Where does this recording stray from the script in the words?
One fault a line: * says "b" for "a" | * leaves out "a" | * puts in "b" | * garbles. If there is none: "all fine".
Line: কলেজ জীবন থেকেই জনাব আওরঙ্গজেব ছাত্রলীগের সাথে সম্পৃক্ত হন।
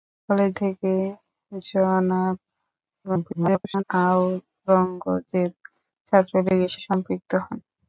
* leaves out "জীবন"
* garbles
* leaves out "সাথে"